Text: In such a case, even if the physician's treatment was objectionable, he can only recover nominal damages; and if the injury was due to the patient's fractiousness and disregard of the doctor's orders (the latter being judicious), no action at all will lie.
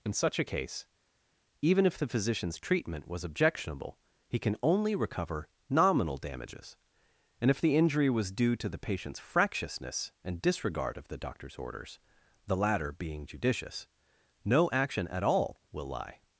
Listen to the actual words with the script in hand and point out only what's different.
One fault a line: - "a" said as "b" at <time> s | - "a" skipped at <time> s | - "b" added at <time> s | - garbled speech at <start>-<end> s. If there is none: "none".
none